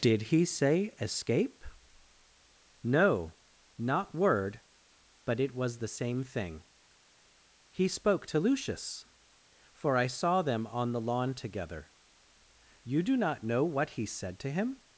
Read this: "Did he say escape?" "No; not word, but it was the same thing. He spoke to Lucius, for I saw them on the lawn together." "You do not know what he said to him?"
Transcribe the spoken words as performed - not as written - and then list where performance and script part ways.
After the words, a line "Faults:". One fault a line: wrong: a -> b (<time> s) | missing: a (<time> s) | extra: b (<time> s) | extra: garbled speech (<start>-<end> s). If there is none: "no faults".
"Did he say escape?" "No; not word, but it was the same thing. He spoke to Lucius, for I saw them on the lawn together." "You do not know what he said to him?"
Faults:
no faults